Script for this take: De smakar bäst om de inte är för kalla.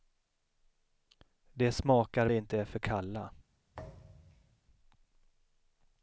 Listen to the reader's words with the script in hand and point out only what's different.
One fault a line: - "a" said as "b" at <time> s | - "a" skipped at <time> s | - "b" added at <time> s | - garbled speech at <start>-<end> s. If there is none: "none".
- "bäst om" skipped at 2.3 s